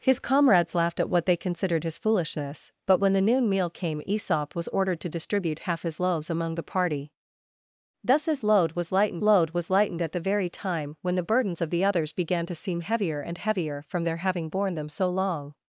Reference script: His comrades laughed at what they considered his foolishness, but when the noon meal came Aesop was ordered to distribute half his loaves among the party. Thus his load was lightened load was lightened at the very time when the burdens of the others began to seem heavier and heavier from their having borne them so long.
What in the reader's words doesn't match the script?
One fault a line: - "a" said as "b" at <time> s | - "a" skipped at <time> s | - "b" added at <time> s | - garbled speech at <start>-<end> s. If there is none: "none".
none